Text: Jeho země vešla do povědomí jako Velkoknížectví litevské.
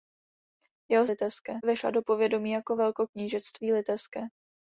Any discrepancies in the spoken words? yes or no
yes